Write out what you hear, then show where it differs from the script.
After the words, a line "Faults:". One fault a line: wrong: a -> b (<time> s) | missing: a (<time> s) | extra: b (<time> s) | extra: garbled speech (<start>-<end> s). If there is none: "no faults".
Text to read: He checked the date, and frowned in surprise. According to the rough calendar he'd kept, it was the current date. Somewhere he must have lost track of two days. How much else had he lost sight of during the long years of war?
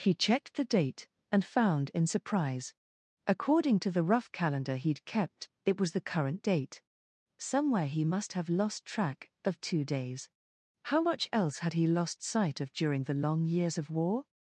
He checked the date, and found in surprise. According to the rough calendar he'd kept, it was the current date. Somewhere he must have lost track of two days. How much else had he lost sight of during the long years of war?
Faults:
wrong: frowned -> found (1.4 s)